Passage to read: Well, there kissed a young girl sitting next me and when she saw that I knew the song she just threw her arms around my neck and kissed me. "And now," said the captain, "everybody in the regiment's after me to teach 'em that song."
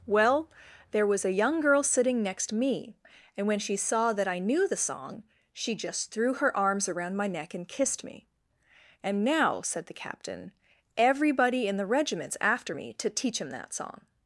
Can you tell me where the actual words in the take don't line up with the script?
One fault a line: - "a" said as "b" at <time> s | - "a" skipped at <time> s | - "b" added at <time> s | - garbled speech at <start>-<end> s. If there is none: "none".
- "kissed" said as "was" at 1.1 s